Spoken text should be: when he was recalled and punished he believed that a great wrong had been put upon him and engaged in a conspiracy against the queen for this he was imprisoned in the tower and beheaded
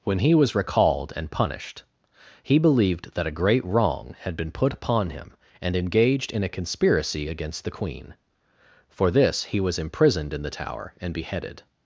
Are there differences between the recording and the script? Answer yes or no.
no